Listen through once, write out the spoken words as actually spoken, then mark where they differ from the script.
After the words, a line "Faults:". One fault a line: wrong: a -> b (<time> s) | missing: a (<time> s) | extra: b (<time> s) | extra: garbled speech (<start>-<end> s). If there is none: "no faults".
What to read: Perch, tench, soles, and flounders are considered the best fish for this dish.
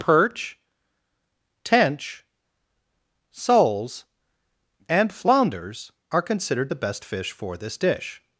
Perch, tench, soles, and flounders are considered the best fish for this dish.
Faults:
no faults